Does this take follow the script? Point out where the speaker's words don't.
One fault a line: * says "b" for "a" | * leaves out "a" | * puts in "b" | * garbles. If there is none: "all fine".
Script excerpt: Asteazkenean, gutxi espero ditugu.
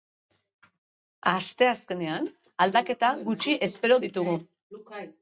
* puts in "aldaketa"